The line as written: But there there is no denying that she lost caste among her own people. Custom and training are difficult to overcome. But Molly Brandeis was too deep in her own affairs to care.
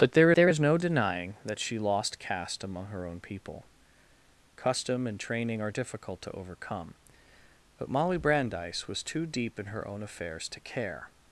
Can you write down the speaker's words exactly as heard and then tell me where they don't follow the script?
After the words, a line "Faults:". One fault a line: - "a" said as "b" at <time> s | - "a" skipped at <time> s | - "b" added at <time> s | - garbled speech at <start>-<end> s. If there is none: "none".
But there there is no denying that she lost caste among her own people. Custom and training are difficult to overcome. But Molly Brandeis was too deep in her own affairs to care.
Faults:
none